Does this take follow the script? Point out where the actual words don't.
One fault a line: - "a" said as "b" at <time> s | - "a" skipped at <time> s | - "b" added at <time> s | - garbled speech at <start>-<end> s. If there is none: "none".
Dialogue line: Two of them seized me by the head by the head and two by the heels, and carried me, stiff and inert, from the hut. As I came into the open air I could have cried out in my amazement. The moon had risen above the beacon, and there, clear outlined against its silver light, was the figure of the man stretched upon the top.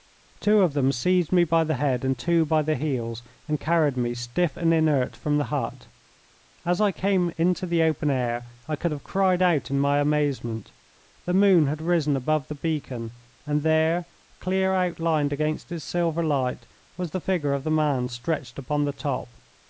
- "by the head" skipped at 2.0 s